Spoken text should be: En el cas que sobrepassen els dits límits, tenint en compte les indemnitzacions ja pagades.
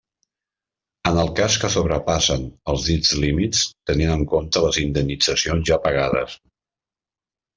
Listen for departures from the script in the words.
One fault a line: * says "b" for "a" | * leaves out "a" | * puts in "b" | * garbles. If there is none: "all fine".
all fine